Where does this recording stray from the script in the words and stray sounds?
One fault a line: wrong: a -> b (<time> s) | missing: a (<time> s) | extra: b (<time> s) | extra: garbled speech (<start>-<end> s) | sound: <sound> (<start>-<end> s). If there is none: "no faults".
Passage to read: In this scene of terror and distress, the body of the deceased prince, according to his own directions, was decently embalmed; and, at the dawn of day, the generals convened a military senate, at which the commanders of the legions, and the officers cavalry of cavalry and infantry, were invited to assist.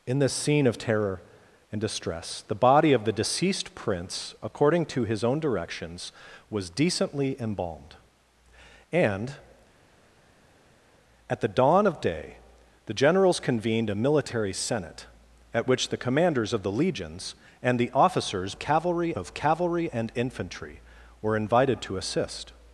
no faults